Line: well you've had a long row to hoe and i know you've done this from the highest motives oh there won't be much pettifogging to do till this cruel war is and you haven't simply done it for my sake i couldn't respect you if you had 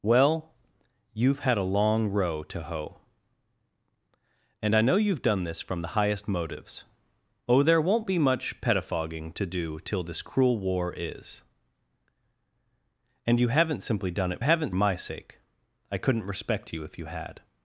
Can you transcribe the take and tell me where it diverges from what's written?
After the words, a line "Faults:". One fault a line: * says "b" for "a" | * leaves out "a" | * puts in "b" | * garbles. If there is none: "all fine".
well you've had a long row to hoe and i know you've done this from the highest motives oh there won't be much pettifogging to do till this cruel war is and you haven't simply done it haven't my sake i couldn't respect you if you had
Faults:
* says "haven't" for "for"